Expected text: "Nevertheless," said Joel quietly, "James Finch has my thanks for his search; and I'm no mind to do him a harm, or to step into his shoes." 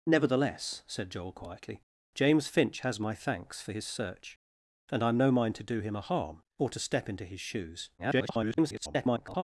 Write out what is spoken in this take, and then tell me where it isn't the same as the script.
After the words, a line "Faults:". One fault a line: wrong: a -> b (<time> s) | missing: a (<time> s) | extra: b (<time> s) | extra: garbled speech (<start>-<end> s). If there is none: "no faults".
"Nevertheless," said Joel quietly, "James Finch has my thanks for his search; and I'm no mind to do him a harm, or to step into his shoes." [garbled]
Faults:
extra: garbled speech (8.0-9.4 s)